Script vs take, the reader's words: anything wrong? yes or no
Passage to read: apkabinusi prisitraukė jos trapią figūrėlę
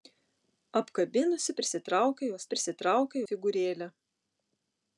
yes